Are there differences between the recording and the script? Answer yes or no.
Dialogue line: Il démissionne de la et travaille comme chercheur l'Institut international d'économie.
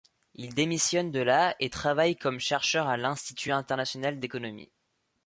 yes